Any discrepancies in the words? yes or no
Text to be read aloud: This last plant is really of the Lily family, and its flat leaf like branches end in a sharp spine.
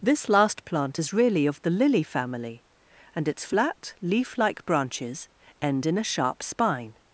no